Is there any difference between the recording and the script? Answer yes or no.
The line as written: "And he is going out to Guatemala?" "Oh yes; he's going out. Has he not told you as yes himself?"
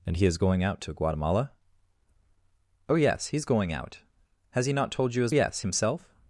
no